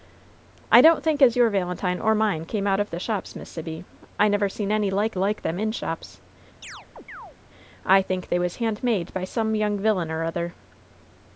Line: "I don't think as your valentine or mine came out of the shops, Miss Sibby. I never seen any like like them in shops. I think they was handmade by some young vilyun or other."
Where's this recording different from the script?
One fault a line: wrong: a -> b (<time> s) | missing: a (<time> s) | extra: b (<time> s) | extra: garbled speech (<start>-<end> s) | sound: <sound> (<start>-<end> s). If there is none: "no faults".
sound: chirp (6.6-7.4 s)